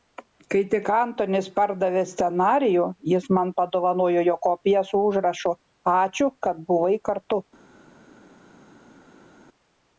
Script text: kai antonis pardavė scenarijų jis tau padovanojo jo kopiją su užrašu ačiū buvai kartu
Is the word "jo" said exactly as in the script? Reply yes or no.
yes